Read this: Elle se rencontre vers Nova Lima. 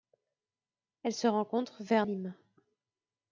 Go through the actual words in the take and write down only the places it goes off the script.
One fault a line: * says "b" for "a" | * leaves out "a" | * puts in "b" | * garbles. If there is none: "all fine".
* leaves out "Nova"